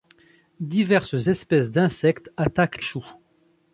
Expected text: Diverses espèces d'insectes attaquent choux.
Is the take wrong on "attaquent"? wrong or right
right